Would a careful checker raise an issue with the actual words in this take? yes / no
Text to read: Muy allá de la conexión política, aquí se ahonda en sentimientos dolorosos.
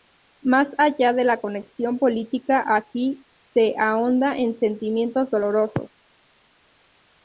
yes